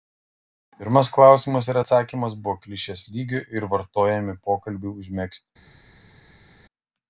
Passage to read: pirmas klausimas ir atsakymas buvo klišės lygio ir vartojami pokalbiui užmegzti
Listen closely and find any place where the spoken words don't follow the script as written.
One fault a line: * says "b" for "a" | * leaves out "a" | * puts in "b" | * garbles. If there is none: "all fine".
all fine